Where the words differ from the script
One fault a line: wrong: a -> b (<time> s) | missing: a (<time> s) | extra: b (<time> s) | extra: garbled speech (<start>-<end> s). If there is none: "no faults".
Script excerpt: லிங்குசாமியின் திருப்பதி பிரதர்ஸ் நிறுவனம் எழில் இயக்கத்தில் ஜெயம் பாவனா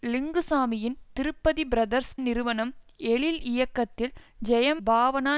no faults